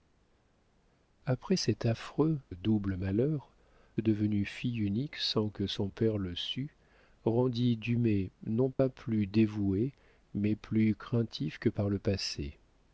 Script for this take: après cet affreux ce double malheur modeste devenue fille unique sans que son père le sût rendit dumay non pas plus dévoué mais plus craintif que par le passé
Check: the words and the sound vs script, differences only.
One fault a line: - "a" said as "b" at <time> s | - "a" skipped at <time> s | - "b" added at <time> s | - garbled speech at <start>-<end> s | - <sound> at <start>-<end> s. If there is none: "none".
- "ce" skipped at 2.4 s
- "modeste" skipped at 3.5 s
- dropout at 8.7-8.8 s